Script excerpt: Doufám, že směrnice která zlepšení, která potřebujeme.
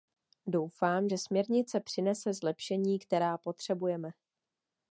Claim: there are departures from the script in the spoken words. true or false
true